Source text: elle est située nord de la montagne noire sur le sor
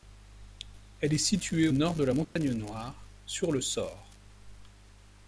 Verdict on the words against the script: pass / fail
pass